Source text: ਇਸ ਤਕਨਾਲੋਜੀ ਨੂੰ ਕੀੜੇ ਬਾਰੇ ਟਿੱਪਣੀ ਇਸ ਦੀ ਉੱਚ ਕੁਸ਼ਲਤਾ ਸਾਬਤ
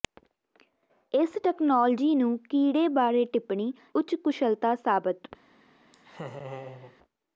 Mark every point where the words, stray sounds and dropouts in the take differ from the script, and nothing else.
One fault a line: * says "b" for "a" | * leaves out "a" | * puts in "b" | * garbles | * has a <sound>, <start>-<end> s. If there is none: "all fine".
* leaves out "ਇਸ ਦੀ"
* has a laugh, 5.9-7.0 s